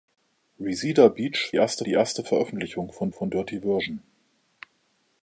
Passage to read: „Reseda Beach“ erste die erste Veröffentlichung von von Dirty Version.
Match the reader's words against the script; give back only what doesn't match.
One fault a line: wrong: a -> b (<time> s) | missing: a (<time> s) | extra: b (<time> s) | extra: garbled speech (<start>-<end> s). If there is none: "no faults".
no faults